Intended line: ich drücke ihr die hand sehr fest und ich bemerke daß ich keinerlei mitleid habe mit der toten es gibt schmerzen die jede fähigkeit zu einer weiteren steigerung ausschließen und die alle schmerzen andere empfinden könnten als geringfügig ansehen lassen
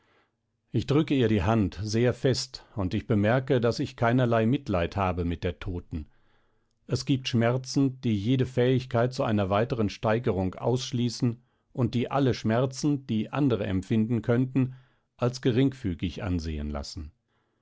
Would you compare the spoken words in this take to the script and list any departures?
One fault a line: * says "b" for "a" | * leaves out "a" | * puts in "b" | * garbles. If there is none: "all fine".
* puts in "die"